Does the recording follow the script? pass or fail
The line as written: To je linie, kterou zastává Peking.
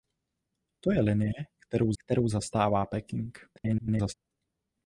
fail